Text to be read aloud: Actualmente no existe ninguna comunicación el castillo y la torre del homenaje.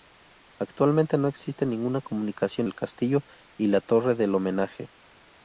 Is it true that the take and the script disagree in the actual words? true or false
false